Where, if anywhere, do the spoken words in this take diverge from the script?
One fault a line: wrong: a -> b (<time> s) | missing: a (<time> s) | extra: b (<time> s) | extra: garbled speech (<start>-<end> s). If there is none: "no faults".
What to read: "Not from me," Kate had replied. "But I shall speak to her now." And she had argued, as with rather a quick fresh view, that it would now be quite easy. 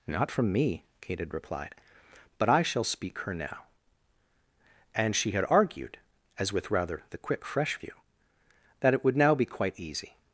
missing: to (3.2 s)
wrong: a -> the (7.1 s)